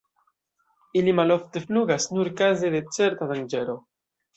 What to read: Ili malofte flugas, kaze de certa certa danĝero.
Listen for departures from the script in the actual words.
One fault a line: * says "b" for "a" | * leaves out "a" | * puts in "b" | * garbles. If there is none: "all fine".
* puts in "nur"
* leaves out "certa"